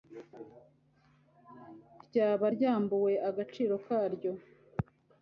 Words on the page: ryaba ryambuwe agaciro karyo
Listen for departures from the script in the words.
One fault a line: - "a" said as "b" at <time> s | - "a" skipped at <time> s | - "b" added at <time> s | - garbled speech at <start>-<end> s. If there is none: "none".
none